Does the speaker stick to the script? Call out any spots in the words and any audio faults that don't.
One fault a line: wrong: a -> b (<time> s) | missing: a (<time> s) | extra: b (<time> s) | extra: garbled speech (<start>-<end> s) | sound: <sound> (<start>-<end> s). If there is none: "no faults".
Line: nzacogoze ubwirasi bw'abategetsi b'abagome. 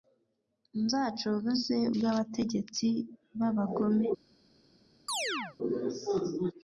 missing: ubwirasi (1.8 s)
sound: chirp (5.1-5.6 s)